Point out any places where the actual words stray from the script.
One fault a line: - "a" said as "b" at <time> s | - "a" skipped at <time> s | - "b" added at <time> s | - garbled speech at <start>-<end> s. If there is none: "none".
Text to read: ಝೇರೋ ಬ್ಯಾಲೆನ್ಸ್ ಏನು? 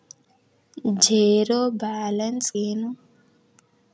none